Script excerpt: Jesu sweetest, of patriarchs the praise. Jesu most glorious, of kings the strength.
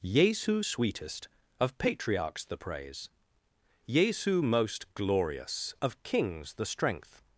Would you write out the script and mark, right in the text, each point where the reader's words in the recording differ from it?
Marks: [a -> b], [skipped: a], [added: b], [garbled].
Jesu sweetest, of patriarchs the praise. Jesu most glorious, of kings the strength.